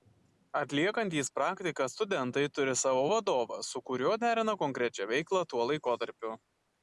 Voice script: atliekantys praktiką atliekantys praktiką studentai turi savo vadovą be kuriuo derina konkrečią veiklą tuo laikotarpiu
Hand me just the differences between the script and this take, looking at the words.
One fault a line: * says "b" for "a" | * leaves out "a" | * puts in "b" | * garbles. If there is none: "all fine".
* leaves out "atliekantys praktiką"
* says "su" for "be"